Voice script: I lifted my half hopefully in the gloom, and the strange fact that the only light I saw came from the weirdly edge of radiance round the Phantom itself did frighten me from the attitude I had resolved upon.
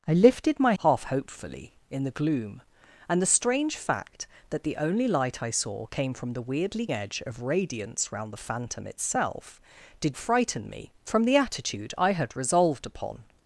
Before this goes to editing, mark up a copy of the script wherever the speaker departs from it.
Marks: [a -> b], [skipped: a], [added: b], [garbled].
I lifted my half hopefully in the gloom, and the strange fact that the only light I saw came from the weirdly edge of radiance round the Phantom itself did frighten me from the attitude I had resolved upon.